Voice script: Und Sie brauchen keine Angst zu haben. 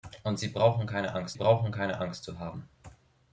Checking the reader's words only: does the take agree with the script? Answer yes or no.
no